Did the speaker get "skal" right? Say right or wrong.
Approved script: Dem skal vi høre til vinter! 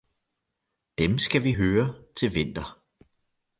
right